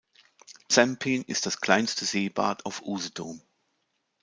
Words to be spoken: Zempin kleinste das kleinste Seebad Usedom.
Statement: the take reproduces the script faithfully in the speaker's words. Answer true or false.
false